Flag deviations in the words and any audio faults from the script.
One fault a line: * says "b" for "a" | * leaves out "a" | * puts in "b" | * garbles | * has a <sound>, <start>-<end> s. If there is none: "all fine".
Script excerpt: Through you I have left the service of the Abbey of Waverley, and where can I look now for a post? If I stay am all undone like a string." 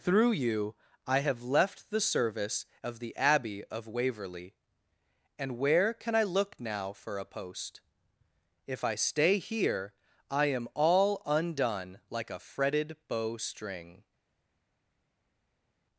* puts in "here I"
* puts in "fretted bow"